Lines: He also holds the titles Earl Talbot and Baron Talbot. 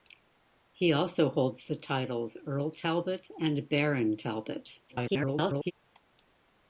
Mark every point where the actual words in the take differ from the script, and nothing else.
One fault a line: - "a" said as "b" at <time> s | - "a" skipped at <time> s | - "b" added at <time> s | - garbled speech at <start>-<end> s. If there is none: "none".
- garbled speech at 4.9-5.7 s